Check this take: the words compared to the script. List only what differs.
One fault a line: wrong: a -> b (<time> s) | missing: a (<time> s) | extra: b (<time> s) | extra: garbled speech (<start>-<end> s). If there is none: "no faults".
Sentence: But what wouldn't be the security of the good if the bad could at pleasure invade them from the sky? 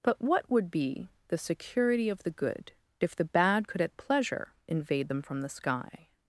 wrong: wouldn't -> would (0.5 s)